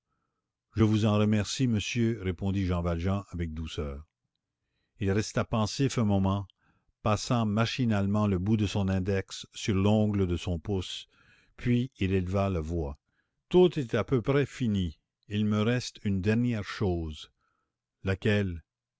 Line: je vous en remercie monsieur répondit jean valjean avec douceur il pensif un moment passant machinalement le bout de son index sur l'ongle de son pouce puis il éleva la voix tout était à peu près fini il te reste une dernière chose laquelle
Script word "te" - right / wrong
wrong